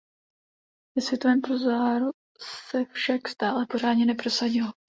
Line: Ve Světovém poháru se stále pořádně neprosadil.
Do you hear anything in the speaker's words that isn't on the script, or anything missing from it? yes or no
yes